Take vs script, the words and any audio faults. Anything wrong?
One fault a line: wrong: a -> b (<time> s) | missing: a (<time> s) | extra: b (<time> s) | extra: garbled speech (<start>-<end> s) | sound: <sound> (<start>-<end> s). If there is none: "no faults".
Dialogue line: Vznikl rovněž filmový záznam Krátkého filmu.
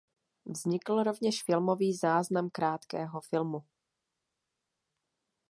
no faults